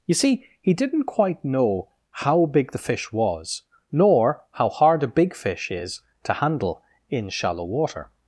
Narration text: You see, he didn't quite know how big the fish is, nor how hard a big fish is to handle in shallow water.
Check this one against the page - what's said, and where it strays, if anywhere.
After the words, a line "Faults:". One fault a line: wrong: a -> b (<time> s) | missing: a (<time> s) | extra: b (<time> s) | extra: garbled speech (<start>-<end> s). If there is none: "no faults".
You see, he didn't quite know how big the fish was, nor how hard a big fish is to handle in shallow water.
Faults:
wrong: is -> was (3.1 s)